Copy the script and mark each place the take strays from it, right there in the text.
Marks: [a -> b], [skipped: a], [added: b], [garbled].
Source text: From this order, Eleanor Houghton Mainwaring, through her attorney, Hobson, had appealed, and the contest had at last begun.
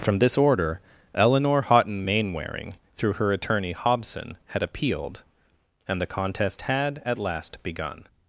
From this order, Eleanor Houghton Mainwaring, through her attorney, Hobson, had appealed, and the contest had at last begun.